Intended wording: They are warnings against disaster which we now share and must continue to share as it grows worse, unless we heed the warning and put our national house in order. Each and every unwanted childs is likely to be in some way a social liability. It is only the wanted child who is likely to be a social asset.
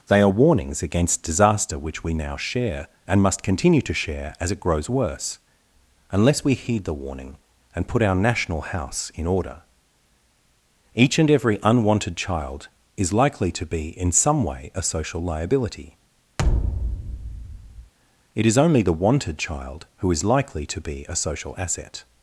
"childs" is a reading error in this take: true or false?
true